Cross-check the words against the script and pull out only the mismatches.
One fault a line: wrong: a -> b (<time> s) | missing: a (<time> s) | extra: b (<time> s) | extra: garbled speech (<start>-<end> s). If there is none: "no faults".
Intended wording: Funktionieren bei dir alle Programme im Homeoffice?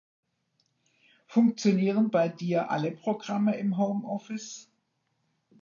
no faults